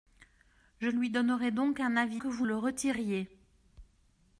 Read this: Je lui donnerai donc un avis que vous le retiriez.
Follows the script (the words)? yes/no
yes